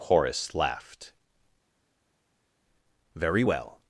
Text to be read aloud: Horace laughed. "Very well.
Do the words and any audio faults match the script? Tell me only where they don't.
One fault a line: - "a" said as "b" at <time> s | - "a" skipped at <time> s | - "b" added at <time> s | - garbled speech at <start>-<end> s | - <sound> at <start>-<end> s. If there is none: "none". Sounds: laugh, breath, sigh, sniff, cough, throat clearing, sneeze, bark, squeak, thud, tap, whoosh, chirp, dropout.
none